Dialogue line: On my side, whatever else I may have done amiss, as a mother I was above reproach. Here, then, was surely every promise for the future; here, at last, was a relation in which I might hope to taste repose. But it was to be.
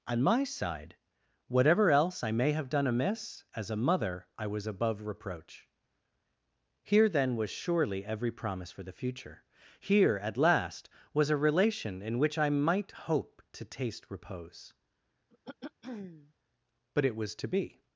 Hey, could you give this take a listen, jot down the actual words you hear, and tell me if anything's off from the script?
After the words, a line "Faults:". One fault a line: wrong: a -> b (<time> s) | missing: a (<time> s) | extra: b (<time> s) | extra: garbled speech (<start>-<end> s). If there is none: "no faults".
On my side, whatever else I may have done amiss, as a mother I was above reproach. Here, then, was surely every promise for the future; here, at last, was a relation in which I might hope to taste repose. But it was to be.
Faults:
no faults